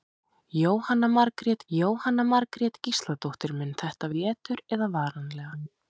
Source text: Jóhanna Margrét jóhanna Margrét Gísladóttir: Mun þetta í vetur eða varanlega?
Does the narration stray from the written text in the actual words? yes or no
no